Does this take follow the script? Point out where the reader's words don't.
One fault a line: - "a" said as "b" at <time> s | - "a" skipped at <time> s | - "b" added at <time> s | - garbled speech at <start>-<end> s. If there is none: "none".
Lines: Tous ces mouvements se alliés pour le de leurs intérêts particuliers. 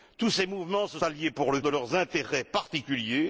none